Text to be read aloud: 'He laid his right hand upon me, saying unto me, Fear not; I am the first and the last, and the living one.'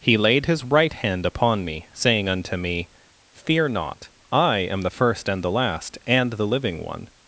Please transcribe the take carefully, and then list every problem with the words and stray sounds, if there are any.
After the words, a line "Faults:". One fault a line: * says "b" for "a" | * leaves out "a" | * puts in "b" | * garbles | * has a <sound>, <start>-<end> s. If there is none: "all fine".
'He laid his right hand upon me, saying unto me, Fear not; I am the first and the last, and the living one.'
Faults:
all fine